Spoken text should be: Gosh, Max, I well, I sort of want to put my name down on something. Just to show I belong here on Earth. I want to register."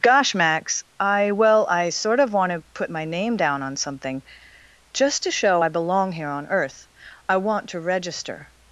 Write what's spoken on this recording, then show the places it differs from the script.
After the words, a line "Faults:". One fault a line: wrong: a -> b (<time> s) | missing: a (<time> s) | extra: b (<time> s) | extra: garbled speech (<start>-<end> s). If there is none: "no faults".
Gosh, Max, I well, I sort of want to put my name down on something. Just to show I belong here on Earth. I want to register."
Faults:
no faults